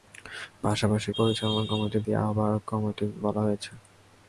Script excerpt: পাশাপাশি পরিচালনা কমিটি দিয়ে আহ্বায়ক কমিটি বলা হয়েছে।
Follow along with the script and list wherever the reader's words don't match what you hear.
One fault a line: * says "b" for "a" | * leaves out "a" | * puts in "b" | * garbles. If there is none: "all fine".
all fine